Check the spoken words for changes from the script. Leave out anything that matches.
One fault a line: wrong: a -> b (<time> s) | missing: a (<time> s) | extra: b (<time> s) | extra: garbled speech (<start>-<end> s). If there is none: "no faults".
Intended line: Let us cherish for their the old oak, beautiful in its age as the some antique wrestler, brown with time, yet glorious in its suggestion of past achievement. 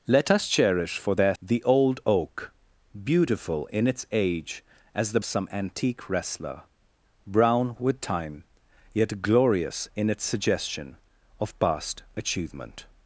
no faults